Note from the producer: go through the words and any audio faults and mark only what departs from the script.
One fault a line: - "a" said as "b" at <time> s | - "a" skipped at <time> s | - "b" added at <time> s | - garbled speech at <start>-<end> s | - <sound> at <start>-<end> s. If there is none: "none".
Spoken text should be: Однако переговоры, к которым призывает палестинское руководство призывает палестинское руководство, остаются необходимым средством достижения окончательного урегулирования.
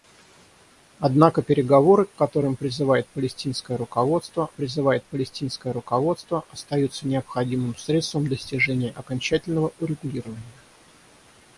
none